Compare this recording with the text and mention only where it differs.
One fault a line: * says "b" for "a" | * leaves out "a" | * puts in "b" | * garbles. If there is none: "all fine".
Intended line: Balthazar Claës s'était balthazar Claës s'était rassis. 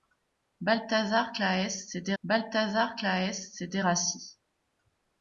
all fine